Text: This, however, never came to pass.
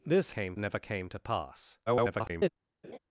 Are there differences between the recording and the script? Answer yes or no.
yes